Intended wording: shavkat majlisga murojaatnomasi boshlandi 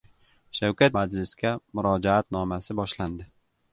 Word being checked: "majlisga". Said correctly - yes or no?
yes